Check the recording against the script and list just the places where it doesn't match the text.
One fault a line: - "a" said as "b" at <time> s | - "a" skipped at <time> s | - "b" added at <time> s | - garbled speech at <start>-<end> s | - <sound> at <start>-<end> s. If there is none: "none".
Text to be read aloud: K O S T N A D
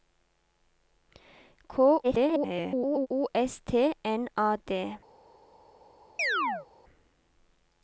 - garbled speech at 2.0-3.1 s
- chirp at 6.2-6.7 s